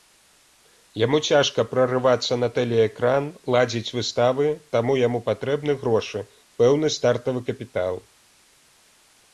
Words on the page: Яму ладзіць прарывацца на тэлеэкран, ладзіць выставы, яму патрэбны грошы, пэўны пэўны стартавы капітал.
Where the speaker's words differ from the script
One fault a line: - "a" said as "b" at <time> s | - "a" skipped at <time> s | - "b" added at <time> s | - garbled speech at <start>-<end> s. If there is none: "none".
- "ладзіць" said as "цяжка" at 1.3 s
- "таму" added at 4.8 s
- "пэўны" skipped at 6.9 s